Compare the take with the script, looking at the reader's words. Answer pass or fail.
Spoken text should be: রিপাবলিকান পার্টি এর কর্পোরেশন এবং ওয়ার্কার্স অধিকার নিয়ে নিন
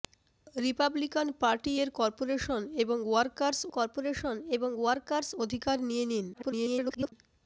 fail